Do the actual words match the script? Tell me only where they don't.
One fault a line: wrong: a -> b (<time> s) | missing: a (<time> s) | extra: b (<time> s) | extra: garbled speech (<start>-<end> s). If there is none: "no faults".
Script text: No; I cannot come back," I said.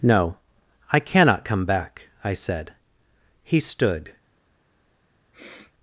extra: He stood (3.4 s)